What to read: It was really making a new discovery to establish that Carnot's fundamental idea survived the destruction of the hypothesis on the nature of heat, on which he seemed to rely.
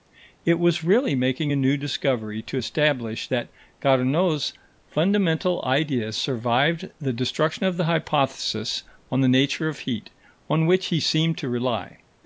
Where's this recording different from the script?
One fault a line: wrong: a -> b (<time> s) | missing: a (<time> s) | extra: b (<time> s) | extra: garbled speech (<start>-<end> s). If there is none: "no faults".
no faults